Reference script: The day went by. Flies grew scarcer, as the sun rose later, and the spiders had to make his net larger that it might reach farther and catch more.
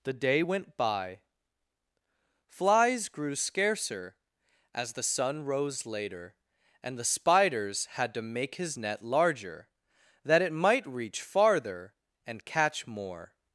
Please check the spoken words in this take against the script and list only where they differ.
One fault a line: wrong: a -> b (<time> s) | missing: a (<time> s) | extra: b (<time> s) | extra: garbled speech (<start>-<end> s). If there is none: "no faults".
no faults